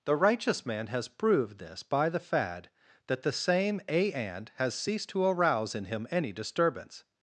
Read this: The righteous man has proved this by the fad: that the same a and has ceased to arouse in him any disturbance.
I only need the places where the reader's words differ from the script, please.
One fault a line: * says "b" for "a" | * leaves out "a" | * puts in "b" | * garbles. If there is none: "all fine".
all fine